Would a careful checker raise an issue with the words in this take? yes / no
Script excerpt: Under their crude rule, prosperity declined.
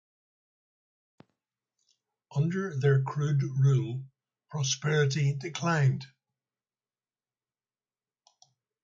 no